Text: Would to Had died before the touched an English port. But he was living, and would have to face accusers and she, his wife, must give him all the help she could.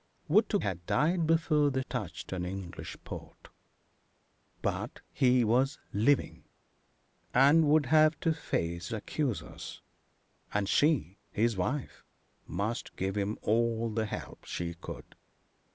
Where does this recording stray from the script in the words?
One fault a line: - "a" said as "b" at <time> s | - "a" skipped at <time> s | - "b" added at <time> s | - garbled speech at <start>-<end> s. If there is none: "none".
none